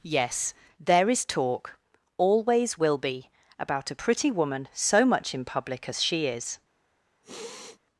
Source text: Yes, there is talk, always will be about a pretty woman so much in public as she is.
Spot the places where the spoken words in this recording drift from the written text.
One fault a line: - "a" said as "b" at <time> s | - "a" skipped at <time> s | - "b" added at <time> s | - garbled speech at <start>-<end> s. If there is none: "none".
none